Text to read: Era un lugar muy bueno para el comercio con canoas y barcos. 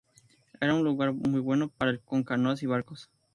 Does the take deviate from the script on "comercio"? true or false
true